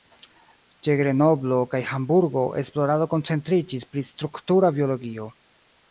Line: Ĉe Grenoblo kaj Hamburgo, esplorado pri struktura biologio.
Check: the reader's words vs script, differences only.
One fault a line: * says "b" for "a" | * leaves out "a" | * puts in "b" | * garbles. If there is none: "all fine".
* puts in "koncentriĝis"